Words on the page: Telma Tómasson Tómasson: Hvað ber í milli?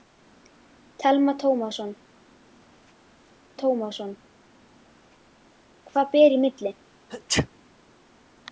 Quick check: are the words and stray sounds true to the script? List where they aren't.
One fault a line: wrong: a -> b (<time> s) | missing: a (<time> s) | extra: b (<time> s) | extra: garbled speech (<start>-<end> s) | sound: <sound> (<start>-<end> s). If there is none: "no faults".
sound: sneeze (7.1-7.5 s)